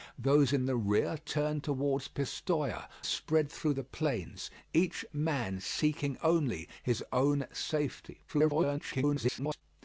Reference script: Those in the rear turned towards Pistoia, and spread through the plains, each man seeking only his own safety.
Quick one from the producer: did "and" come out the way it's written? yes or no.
no